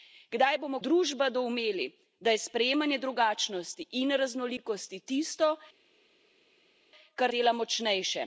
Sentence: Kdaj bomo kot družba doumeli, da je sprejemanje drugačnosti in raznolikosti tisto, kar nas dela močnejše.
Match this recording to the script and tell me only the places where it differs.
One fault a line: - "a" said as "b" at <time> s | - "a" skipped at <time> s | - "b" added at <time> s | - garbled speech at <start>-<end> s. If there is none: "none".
- "kot" skipped at 0.8 s
- "nas" skipped at 7.3 s